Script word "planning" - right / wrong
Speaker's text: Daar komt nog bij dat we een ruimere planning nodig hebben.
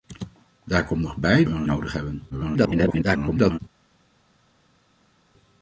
wrong